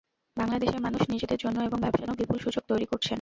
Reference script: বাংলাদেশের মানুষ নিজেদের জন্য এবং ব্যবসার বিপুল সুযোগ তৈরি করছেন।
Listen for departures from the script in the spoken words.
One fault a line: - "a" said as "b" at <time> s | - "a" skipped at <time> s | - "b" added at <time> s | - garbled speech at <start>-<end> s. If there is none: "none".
none